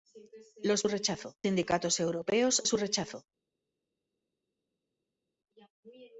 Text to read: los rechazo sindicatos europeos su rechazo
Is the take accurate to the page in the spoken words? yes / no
yes